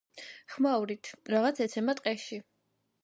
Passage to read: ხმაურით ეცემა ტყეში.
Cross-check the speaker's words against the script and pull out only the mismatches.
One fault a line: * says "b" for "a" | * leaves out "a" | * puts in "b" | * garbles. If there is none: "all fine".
* puts in "რაღაც"